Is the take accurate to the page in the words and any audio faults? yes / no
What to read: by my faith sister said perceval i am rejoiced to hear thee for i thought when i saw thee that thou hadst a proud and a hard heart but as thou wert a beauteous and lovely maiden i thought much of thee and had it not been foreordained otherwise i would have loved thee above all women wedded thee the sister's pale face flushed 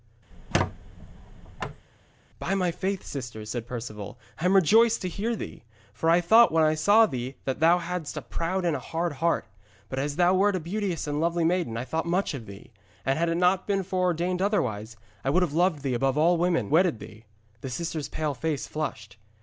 no